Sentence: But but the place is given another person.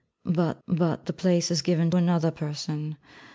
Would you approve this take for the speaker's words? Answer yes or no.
yes